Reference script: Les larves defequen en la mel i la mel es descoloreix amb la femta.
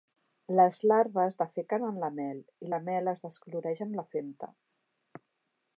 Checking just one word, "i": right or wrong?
right